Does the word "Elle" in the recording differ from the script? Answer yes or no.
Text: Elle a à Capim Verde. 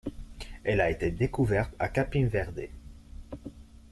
no